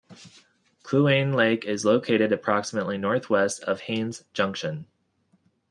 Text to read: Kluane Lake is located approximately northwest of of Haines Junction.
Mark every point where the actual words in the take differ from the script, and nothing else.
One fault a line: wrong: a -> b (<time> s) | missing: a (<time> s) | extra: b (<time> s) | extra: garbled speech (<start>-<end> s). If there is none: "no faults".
missing: of (3.8 s)